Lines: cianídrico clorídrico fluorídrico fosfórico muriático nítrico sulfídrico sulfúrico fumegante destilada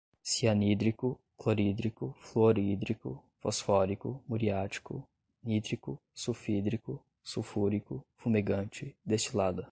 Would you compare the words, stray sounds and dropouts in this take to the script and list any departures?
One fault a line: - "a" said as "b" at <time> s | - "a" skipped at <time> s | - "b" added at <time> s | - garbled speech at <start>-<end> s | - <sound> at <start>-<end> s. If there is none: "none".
none